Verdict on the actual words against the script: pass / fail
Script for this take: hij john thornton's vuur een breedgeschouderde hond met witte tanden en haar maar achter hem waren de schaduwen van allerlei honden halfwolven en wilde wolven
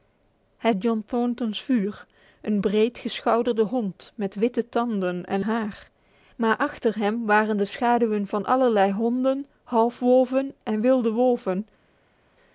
pass